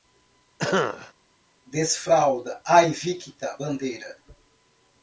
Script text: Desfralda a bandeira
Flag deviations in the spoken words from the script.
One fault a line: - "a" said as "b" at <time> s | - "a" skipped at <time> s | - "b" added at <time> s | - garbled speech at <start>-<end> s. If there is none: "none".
- "invicta" added at 2.8 s